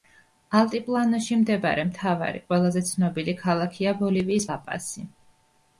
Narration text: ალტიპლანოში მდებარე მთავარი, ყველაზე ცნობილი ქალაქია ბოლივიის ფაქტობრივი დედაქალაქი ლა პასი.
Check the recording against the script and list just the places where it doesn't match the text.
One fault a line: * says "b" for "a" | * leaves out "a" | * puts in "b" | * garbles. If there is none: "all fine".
* leaves out "ფაქტობრივი დედაქალაქი"